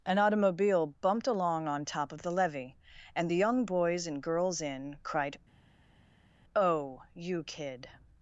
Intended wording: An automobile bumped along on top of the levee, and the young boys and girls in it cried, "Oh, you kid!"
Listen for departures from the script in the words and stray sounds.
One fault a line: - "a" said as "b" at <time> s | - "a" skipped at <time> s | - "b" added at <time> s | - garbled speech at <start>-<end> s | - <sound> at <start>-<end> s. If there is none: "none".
- "it" skipped at 5.0 s